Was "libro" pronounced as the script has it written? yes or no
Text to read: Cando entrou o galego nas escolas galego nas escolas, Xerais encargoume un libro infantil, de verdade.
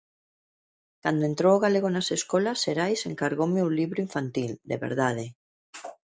yes